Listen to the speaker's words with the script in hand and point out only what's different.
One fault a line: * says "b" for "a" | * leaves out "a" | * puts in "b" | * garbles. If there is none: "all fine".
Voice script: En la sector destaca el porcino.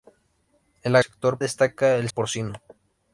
all fine